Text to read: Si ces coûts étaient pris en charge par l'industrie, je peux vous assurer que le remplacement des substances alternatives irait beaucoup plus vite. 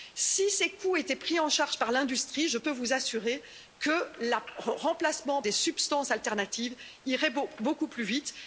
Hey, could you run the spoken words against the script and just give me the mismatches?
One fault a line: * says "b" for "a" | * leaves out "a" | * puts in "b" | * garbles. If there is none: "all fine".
all fine